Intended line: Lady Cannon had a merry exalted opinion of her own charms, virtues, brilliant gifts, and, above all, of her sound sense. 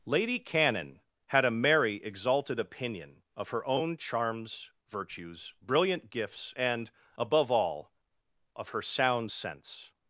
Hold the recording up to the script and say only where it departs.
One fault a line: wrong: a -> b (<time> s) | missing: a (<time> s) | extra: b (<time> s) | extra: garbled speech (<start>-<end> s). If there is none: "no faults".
no faults